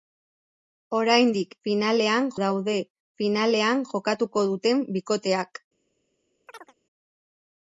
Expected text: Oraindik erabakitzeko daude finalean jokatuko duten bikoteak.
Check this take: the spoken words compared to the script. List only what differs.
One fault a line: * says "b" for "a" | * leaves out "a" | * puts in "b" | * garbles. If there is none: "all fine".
* says "finalean" for "erabakitzeko"